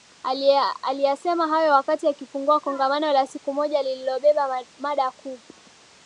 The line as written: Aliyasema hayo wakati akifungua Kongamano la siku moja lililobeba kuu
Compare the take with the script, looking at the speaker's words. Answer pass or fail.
fail